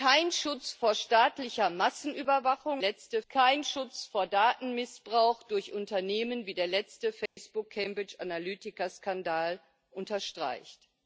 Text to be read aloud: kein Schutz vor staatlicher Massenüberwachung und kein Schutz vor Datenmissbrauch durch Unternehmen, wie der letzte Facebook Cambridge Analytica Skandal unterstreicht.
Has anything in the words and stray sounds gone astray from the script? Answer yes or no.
yes